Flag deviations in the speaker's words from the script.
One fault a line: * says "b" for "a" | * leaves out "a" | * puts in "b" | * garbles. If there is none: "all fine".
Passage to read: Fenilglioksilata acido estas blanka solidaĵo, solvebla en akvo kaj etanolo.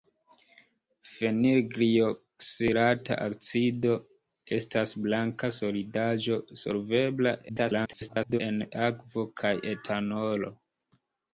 * garbles